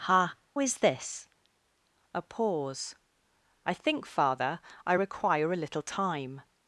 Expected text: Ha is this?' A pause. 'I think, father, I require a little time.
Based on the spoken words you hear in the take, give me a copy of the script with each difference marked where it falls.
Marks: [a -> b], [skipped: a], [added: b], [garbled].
Ha is this?' A pause. 'I think, father, I require a little time.